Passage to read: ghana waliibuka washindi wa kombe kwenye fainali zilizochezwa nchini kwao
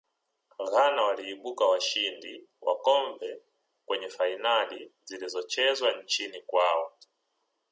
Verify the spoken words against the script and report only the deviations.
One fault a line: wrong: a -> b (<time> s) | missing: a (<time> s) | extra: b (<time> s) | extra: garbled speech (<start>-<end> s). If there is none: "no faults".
no faults